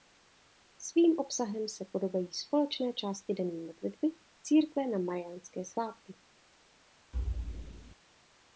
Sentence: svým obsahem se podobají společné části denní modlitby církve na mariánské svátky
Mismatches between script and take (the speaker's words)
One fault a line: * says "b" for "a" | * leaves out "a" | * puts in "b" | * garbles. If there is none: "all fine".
all fine